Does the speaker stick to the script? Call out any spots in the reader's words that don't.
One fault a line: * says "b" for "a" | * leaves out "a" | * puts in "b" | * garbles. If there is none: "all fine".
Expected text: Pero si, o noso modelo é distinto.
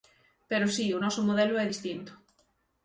all fine